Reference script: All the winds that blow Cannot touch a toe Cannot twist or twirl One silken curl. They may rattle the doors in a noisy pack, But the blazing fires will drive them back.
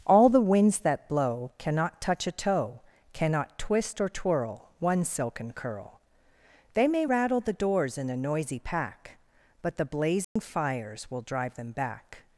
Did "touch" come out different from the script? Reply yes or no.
no